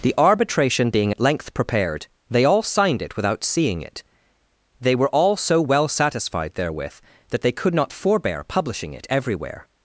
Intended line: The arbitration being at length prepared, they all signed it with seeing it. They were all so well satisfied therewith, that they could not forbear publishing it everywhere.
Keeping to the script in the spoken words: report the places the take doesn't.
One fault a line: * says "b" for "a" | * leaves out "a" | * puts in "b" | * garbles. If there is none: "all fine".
* says "without" for "with"